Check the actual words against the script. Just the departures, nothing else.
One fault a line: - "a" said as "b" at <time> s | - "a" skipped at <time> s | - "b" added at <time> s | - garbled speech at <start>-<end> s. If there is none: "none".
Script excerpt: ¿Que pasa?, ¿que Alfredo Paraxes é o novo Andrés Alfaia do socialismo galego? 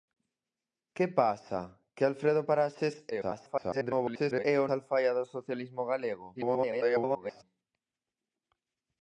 - garbled speech at 3.1-4.5 s
- "novo Andrés" skipped at 4.7 s
- garbled speech at 6.3-7.4 s